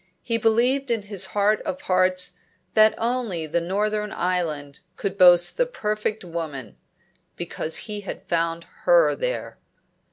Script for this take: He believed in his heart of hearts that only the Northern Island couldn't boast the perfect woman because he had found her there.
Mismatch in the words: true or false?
true